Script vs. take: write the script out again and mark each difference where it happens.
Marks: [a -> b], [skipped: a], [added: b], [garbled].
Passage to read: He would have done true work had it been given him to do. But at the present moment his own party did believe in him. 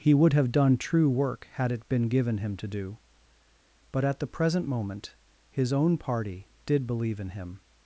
He would have done true work had it been given him to do. But at the present moment his own party did believe in him.